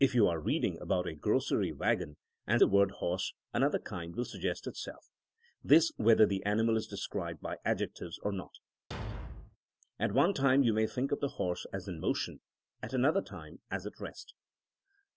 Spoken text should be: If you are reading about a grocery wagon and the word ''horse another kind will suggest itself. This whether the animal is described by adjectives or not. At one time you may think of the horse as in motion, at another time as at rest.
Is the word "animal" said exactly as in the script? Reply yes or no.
yes